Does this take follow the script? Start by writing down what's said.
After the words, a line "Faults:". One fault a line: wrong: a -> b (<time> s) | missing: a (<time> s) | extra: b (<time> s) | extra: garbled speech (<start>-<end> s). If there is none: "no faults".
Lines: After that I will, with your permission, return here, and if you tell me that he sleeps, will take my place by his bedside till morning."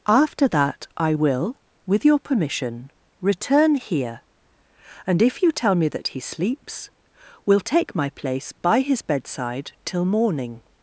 After that I will, with your permission, return here, and if you tell me that he sleeps, will take my place by his bedside till morning."
Faults:
no faults